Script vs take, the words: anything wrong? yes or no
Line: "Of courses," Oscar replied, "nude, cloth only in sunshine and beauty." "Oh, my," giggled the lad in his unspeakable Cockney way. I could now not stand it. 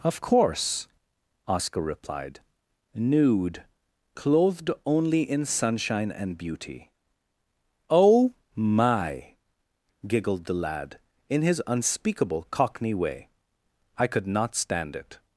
yes